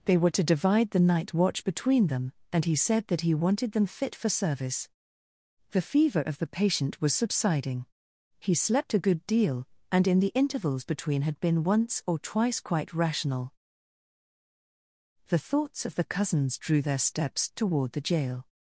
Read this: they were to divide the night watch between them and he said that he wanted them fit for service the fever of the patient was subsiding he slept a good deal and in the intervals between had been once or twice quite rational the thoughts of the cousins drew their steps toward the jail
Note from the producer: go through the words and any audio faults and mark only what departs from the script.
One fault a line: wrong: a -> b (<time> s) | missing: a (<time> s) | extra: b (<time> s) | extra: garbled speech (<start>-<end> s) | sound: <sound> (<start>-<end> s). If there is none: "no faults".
no faults